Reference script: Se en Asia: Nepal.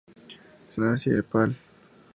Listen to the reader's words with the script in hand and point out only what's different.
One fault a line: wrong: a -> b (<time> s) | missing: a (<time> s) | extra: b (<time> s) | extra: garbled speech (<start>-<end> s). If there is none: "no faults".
no faults